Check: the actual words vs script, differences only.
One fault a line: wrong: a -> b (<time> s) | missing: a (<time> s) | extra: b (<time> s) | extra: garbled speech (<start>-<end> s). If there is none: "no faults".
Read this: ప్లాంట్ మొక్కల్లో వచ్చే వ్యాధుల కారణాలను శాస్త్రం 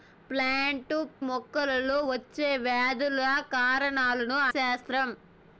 no faults